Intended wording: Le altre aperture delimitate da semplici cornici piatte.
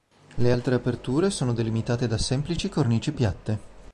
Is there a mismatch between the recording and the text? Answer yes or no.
yes